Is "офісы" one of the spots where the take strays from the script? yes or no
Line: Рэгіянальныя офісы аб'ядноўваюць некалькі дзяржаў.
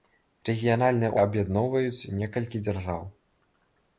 yes